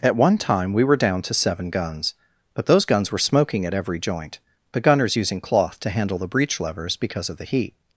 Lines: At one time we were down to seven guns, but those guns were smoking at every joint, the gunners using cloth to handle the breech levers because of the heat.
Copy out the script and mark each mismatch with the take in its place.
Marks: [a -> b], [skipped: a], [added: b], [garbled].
At one time we were down to seven guns, but those guns were smoking at every joint, the gunners using cloth to handle the breech levers because of the heat.